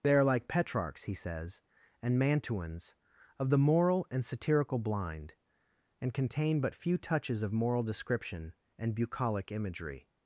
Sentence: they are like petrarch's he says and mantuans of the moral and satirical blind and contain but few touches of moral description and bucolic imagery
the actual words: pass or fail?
pass